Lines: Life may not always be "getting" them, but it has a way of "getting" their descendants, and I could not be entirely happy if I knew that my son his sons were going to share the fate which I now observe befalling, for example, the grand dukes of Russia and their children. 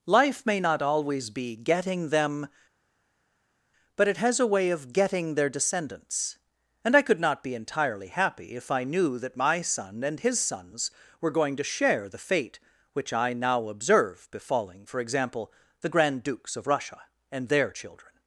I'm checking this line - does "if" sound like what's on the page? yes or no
yes